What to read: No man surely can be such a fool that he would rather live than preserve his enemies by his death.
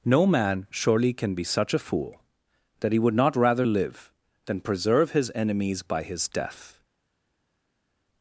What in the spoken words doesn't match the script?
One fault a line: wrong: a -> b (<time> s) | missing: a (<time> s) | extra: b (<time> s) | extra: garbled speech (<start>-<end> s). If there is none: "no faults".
extra: not (3.1 s)